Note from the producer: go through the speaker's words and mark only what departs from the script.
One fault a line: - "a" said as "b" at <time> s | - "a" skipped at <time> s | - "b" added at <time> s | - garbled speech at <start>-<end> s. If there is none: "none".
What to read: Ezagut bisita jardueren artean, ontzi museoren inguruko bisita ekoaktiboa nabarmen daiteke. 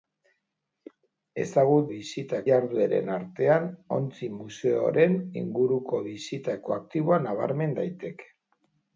none